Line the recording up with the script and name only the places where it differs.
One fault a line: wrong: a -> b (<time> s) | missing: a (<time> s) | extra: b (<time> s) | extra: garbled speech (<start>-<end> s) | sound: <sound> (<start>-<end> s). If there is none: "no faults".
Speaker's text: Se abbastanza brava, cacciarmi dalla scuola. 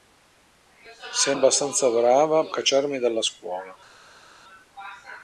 no faults